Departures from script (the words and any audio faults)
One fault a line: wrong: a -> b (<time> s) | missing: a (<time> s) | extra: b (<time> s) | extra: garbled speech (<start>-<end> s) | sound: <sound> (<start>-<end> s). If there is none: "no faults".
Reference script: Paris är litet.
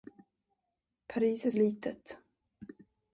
no faults